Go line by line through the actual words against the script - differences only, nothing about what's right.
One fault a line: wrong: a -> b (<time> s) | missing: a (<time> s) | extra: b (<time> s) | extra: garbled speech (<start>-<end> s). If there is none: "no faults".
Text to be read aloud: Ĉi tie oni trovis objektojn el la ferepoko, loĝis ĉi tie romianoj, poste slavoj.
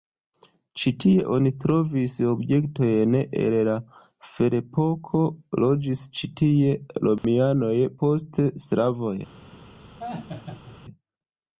no faults